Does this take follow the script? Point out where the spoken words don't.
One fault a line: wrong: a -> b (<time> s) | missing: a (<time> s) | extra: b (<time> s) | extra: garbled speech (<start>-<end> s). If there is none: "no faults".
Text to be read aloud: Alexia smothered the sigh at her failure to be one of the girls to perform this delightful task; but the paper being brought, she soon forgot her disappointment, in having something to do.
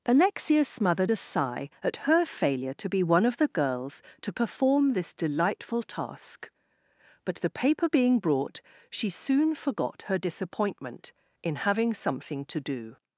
wrong: the -> a (1.1 s)